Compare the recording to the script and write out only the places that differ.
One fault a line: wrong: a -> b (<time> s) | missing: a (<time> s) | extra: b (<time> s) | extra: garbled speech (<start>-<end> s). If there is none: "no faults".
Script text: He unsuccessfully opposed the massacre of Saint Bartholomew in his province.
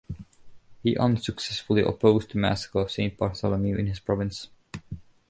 no faults